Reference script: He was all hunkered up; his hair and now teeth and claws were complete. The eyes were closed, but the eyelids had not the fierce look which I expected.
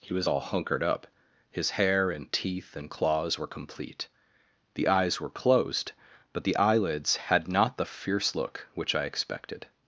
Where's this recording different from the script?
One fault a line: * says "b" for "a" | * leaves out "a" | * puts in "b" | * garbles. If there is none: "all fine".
* leaves out "now"